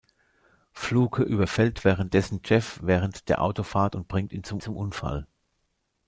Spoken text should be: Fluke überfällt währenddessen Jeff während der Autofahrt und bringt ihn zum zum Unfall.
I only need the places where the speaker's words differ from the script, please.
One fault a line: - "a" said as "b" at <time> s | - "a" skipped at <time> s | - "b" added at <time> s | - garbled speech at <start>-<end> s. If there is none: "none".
none